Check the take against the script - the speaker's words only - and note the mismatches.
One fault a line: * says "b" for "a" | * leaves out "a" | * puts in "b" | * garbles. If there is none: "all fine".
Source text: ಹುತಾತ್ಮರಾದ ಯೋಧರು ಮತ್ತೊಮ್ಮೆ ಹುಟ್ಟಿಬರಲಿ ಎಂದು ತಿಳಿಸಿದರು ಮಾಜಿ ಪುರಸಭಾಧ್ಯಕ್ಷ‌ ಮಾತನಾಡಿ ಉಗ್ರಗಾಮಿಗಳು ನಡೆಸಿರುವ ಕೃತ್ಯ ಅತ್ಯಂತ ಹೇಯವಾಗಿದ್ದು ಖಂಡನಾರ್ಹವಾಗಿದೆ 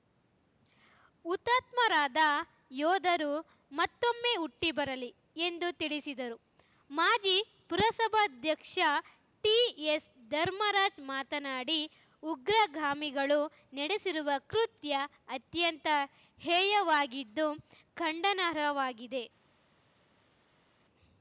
* puts in "ಟಿಎಸ್ ಧರ್ಮರಾಜ್"